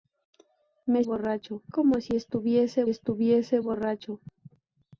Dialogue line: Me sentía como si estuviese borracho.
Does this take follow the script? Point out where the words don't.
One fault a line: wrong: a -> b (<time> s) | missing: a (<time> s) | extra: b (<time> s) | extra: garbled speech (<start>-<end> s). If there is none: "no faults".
wrong: sentía -> borracho (1.0 s)
extra: estuviese (2.9 s)